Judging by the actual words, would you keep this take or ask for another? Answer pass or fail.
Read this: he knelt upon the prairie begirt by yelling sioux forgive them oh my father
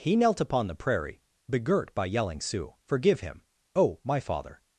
fail